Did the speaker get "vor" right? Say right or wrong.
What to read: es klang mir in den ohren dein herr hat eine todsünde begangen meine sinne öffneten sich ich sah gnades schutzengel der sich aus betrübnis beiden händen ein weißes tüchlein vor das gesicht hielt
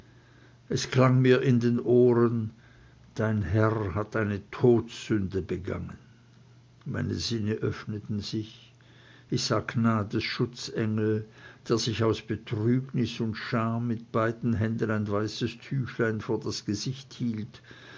right